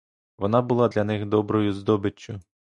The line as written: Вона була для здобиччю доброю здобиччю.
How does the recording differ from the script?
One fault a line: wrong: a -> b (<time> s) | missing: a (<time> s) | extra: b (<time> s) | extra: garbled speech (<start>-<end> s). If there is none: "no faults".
wrong: здобиччю -> них (1.0 s)